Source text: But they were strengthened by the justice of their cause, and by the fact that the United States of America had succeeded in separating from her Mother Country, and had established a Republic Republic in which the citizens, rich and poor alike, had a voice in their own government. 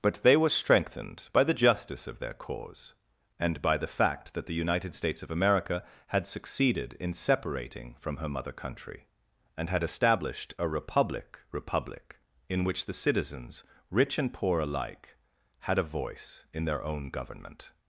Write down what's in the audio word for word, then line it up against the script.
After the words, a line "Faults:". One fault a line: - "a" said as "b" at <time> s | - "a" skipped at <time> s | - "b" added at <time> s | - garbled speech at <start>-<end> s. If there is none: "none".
But they were strengthened by the justice of their cause, and by the fact that the United States of America had succeeded in separating from her Mother Country, and had established a Republic Republic in which the citizens, rich and poor alike, had a voice in their own government.
Faults:
none